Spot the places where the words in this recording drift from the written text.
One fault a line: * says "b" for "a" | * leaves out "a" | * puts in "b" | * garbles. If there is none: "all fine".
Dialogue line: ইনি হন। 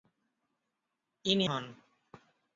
all fine